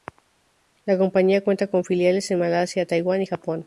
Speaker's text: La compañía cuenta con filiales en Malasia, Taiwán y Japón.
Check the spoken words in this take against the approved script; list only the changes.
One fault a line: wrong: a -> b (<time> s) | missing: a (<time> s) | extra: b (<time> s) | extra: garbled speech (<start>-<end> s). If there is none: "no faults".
no faults